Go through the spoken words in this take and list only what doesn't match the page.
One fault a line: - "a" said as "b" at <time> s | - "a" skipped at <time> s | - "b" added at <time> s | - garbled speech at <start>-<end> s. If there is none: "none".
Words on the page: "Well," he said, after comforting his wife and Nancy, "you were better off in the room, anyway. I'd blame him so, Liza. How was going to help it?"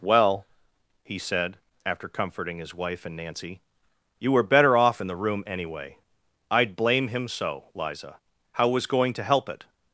none